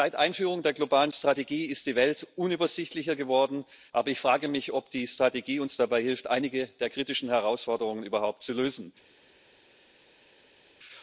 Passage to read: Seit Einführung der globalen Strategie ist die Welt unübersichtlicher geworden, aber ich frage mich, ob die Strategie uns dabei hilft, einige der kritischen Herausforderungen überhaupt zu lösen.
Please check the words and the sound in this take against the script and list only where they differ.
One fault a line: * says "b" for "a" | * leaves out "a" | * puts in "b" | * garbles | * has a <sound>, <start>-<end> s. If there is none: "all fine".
all fine